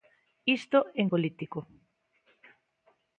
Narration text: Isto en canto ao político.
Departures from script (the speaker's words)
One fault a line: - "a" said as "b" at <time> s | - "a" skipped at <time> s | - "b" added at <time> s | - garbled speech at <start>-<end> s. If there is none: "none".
- "canto ao" skipped at 1.1 s